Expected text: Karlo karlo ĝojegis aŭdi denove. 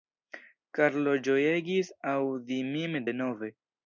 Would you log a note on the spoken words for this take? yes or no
yes